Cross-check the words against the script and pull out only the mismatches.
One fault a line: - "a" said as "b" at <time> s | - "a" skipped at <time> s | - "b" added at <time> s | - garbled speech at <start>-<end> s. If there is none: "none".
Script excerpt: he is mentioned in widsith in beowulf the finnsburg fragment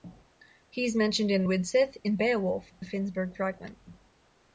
none